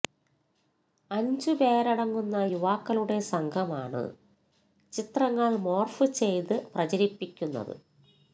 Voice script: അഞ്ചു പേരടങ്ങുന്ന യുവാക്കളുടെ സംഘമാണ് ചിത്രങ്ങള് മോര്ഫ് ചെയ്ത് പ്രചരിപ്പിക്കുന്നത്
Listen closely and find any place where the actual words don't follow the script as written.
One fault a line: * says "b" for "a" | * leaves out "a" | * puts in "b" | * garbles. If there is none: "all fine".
all fine